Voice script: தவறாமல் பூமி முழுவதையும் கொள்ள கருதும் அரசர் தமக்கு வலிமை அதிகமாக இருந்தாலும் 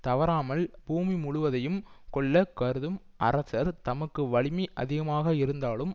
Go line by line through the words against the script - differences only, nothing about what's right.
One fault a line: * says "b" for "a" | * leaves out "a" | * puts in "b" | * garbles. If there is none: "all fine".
all fine